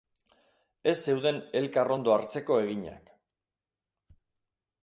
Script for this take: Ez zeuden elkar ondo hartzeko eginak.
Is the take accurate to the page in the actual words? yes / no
yes